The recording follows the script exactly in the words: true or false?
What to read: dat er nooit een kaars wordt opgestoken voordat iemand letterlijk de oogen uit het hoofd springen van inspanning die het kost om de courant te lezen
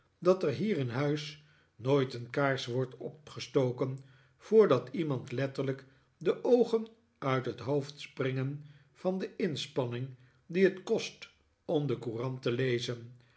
false